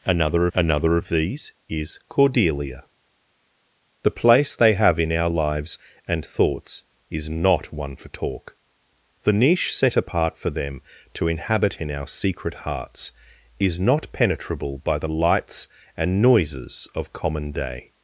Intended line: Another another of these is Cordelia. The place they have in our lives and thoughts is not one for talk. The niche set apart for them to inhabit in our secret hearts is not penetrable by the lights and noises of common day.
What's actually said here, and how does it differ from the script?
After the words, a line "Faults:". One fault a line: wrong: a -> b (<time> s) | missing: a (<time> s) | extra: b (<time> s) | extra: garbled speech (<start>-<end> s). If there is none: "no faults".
Another another of these is Cordelia. The place they have in our lives and thoughts is not one for talk. The niche set apart for them to inhabit in our secret hearts is not penetrable by the lights and noises of common day.
Faults:
no faults